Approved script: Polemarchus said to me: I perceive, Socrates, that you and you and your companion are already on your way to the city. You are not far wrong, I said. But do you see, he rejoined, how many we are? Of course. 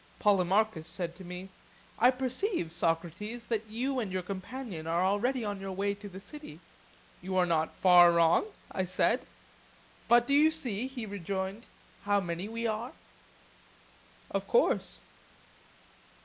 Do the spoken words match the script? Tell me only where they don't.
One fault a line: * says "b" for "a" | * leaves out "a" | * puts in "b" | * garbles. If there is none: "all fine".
* leaves out "you and"